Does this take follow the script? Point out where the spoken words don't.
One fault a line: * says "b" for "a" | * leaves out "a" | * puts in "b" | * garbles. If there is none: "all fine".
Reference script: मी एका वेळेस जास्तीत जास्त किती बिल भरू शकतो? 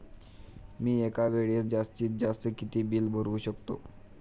all fine